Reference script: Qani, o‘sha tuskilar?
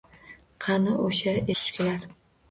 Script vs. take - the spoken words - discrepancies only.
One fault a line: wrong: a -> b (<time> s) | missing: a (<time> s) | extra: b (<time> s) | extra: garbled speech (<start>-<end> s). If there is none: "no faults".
no faults